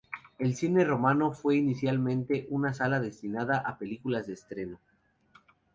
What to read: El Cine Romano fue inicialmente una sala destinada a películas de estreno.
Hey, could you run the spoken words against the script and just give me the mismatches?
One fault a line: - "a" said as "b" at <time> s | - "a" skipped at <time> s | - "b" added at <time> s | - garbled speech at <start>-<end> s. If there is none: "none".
none